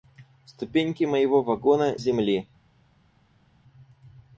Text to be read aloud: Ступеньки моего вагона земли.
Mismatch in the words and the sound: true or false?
false